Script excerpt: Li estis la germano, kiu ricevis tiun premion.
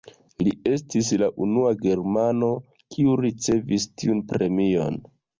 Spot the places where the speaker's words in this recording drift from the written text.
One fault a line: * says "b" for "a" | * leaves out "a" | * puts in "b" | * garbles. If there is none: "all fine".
* puts in "unua"